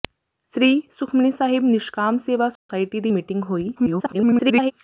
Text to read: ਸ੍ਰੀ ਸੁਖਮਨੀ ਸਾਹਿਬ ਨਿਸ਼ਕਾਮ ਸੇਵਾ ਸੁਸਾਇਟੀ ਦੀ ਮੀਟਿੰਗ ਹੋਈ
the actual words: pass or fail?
fail